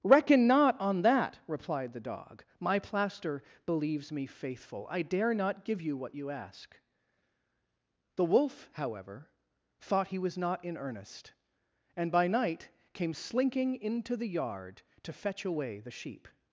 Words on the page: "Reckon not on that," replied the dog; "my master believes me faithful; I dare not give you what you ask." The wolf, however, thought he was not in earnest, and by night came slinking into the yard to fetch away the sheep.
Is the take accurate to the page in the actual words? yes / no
no